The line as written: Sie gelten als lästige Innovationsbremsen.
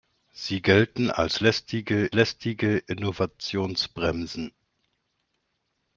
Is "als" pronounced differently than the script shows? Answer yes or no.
no